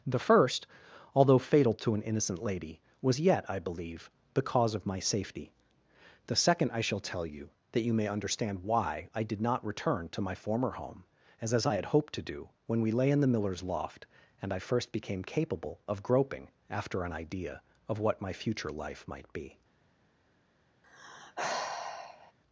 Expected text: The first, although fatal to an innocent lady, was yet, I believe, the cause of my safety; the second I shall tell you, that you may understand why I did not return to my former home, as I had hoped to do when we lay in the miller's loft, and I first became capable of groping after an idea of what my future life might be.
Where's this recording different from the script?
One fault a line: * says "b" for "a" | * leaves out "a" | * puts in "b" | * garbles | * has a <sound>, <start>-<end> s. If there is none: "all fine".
* puts in "as"
* has a sigh, 20.8-22.3 s